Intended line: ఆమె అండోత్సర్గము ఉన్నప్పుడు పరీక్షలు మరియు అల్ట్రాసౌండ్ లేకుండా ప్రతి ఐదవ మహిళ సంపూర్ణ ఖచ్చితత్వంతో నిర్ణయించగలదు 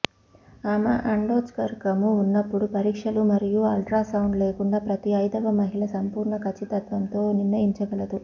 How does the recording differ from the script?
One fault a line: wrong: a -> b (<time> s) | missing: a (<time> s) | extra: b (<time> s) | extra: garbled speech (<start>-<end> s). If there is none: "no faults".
no faults